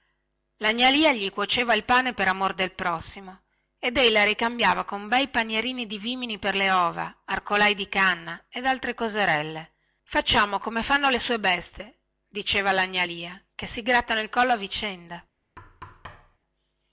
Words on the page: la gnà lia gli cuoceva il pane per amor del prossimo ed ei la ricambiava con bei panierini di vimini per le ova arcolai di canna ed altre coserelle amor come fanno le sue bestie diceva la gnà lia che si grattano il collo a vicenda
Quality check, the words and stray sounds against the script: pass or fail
fail